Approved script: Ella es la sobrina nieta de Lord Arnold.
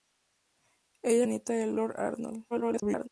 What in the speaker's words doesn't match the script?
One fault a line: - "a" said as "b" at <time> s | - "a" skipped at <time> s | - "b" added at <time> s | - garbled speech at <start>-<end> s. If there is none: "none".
- "la sobrina" skipped at 1.3 s
- garbled speech at 2.5-3.1 s